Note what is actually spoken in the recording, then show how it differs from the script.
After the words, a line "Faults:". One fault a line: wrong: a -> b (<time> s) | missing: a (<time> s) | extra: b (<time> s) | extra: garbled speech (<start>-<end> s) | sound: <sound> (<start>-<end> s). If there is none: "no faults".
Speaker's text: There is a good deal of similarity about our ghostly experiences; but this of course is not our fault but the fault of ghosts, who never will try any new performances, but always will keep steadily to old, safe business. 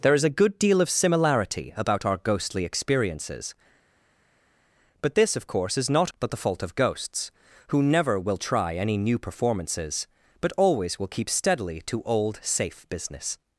There is a good deal of similarity about our ghostly experiences; but this of course is not but the fault of ghosts, who never will try any new performances, but always will keep steadily to old, safe business.
Faults:
missing: our fault (6.1 s)